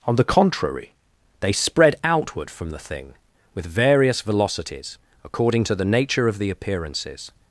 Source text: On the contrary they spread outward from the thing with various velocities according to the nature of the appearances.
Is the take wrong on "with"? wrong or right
right